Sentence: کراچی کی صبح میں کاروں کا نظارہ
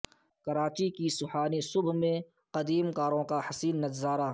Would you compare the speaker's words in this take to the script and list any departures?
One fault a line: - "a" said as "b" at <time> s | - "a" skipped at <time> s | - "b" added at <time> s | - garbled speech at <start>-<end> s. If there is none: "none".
- "سہانی" added at 1.2 s
- "قدیم" added at 2.5 s
- "حسین" added at 3.5 s